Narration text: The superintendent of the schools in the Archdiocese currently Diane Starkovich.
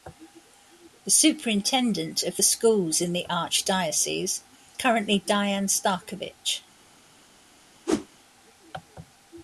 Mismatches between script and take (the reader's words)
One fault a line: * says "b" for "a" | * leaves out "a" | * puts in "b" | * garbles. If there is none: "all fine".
all fine